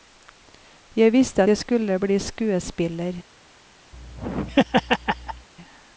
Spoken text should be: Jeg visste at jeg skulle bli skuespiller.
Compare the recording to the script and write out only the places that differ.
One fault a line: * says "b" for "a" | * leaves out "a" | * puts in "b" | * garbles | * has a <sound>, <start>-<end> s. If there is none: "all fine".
* leaves out "at"
* has a laugh, 3.9-5.5 s